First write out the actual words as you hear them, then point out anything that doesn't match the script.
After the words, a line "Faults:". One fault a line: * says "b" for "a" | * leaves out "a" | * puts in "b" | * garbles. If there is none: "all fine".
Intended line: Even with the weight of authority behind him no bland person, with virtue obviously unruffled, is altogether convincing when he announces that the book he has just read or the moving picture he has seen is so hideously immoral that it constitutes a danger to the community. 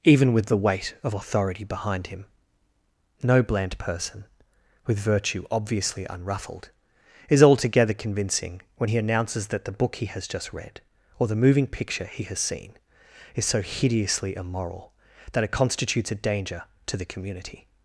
Even with the weight of authority behind him no bland person, with virtue obviously unruffled, is altogether convincing when he announces that the book he has just read or the moving picture he has seen is so hideously immoral that it constitutes a danger to the community.
Faults:
all fine